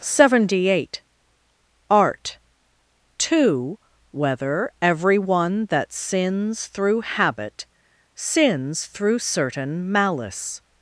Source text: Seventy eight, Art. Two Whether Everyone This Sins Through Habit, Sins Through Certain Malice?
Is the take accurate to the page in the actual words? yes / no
no